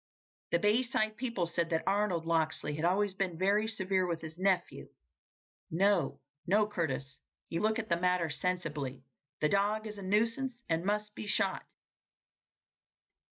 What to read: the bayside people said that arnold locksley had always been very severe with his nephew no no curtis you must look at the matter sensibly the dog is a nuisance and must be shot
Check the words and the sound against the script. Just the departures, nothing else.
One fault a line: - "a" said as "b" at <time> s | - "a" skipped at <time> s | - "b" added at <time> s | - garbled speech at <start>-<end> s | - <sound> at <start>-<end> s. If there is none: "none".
- "must" skipped at 7.6 s